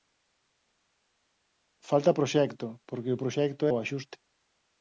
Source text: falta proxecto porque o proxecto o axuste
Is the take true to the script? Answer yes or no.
yes